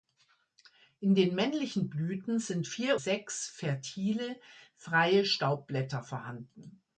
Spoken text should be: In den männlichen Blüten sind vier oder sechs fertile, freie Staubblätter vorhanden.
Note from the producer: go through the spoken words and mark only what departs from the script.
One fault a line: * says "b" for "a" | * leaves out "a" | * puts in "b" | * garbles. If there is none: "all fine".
* leaves out "oder"